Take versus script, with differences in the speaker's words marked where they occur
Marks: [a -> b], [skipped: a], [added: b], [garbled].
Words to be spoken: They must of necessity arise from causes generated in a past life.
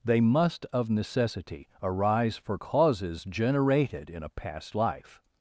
They must of necessity arise [from -> for] causes generated in a past life.